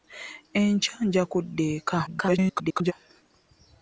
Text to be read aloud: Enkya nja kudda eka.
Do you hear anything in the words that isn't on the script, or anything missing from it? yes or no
yes